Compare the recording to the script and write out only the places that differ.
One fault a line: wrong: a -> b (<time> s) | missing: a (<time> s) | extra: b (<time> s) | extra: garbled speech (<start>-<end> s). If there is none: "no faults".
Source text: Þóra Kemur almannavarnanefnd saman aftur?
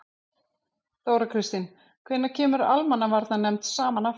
extra: Kristín Hvenær (1.3 s)